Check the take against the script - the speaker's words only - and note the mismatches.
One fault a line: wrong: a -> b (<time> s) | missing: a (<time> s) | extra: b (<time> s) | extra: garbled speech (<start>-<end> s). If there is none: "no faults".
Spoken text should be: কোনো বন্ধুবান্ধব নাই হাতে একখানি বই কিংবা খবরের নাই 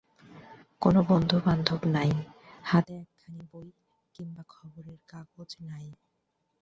extra: কাগজ (5.1 s)